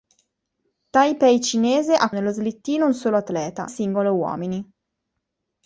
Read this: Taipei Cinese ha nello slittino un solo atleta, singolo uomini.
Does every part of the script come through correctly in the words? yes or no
yes